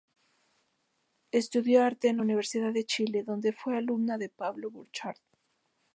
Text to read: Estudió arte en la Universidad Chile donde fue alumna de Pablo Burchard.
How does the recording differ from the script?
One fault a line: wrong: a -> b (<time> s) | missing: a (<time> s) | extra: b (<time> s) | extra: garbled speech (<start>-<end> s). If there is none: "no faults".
extra: de (2.7 s)